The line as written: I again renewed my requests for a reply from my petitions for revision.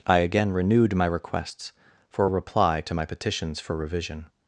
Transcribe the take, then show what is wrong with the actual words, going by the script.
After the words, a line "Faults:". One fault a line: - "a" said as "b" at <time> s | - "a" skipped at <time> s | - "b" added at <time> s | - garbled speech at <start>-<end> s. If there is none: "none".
I again renewed my requests for a reply to my petitions for revision.
Faults:
- "from" said as "to" at 2.8 s